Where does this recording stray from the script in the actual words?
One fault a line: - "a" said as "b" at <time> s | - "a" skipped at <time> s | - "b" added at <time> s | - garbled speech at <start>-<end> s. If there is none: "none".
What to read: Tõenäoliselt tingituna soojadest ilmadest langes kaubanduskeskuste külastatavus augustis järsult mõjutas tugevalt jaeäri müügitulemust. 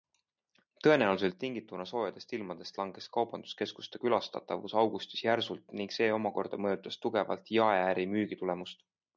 - "ning see omakorda" added at 5.8 s